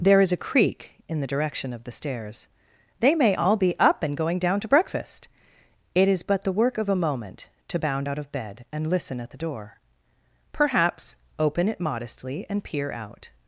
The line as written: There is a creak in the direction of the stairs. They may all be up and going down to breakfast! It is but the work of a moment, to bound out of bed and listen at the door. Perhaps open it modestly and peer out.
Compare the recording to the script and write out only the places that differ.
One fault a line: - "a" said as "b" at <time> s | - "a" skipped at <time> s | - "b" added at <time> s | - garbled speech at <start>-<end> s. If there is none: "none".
none